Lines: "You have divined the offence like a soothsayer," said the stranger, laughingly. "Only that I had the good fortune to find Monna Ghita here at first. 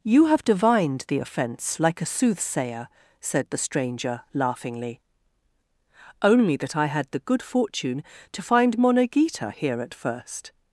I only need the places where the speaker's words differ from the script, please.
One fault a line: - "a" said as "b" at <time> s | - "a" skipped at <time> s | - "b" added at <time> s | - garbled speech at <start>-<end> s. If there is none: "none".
none